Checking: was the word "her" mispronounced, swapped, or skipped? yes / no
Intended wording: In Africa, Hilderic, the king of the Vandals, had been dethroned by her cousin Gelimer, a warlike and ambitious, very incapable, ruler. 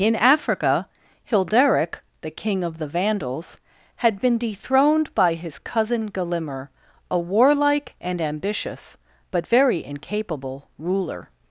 yes